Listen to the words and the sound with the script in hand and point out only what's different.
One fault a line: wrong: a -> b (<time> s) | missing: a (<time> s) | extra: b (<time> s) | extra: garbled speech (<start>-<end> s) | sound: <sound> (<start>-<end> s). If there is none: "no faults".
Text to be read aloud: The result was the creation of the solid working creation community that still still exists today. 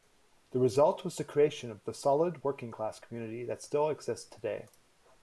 wrong: creation -> class (2.7 s)
missing: still (3.9 s)